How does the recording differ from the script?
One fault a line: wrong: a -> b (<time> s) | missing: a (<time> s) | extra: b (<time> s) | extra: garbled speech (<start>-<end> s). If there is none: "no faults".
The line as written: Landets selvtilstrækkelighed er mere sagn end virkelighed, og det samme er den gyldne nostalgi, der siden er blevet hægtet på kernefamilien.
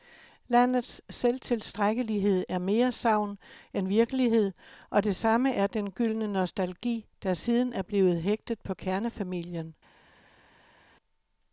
no faults